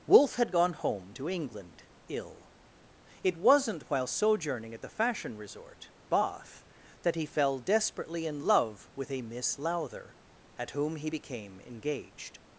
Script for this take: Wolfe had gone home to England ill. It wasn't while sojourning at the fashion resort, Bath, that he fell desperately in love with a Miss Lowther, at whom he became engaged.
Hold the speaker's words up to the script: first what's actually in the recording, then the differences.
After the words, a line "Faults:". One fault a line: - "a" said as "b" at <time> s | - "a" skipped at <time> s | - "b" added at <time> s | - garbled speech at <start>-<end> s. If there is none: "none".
Wolfe had gone home to England ill. It wasn't while sojourning at the fashion resort, Bath, that he fell desperately in love with a Miss Lowther, at whom he became engaged.
Faults:
none